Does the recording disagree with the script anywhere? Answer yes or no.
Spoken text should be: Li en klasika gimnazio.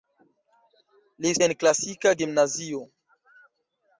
no